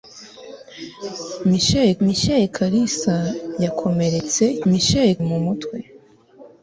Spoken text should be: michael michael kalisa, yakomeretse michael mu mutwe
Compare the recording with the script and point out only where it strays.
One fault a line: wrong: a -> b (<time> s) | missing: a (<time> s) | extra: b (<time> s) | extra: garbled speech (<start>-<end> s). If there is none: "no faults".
no faults